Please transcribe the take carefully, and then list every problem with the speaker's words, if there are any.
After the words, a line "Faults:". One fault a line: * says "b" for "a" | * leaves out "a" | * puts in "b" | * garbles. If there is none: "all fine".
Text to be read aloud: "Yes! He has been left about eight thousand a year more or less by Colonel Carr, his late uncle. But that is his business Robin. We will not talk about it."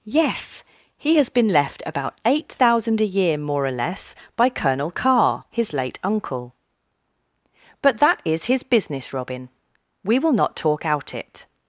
"Yes! He has been left about eight thousand a year more or less by Colonel Carr, his late uncle. But that is his business Robin. We will not talk out it."
Faults:
* says "out" for "about"